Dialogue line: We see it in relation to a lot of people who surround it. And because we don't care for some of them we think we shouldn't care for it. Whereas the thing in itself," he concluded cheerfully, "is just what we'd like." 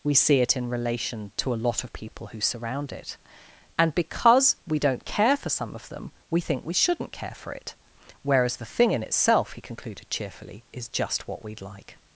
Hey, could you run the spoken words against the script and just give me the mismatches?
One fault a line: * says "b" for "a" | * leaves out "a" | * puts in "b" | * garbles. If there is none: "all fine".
all fine